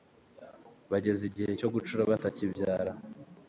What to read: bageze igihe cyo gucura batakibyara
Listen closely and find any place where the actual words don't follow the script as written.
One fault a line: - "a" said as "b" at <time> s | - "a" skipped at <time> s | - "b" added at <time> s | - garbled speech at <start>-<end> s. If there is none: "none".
none